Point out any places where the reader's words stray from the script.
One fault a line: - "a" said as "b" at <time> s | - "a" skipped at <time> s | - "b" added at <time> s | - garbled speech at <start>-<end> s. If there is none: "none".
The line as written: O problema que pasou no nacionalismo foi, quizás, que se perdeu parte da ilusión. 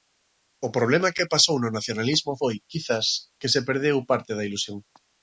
none